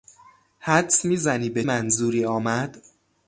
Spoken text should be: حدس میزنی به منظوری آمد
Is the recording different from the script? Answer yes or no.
no